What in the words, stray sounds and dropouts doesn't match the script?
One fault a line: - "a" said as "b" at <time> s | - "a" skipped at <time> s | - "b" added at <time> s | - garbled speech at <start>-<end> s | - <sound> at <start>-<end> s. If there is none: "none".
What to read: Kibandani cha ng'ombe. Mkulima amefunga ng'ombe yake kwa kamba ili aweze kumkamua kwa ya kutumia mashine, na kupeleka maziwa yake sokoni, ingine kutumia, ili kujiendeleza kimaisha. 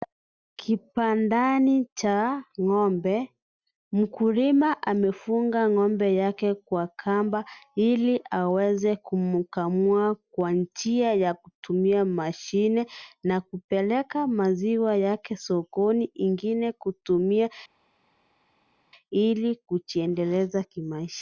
- "njia" added at 10.5 s